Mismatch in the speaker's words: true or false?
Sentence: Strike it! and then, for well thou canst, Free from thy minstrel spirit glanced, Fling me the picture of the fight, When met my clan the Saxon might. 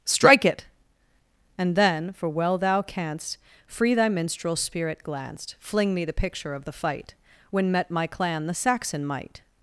true